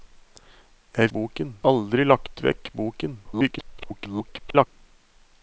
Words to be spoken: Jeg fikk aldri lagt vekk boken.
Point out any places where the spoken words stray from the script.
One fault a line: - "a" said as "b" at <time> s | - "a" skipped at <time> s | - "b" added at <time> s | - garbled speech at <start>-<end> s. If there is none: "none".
- "fikk" said as "boken" at 1.2 s
- garbled speech at 3.2-4.7 s